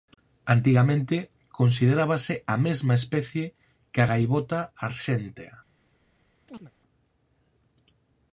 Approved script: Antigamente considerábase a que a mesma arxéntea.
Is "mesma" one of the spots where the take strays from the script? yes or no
yes